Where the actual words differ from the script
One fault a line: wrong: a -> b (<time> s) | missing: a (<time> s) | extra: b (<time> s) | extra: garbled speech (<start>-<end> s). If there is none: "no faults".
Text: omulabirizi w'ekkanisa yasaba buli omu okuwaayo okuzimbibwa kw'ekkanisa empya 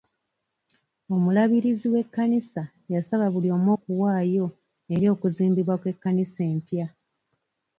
extra: eri (4.9 s)